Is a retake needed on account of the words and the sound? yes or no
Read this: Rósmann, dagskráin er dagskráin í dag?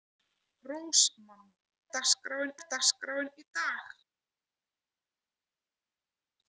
no